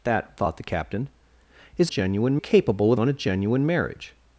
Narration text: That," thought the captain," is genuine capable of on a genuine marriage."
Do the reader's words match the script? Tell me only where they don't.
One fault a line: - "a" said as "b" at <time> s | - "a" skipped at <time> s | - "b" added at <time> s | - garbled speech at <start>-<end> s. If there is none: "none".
none